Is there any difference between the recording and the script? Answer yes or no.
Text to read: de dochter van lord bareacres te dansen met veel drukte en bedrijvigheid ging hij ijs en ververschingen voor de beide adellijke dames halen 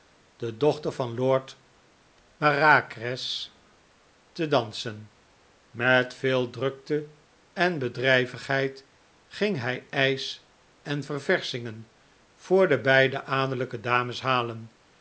no